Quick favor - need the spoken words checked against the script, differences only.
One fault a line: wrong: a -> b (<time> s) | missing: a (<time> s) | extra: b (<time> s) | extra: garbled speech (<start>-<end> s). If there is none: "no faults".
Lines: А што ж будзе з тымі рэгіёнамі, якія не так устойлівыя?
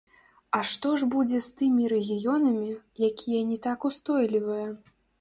no faults